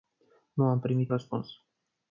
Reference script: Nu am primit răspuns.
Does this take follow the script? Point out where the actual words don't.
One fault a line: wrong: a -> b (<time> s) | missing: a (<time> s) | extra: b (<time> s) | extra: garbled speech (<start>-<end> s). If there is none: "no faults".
no faults